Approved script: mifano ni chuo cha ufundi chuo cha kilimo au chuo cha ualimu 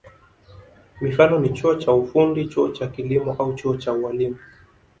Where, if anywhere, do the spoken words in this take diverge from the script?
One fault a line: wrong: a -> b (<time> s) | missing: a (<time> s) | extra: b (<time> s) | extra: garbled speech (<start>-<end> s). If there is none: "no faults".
no faults